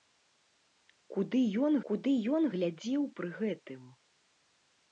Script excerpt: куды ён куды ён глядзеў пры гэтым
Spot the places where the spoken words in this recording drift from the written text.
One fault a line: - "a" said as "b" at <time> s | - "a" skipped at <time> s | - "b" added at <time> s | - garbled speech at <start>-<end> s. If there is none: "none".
none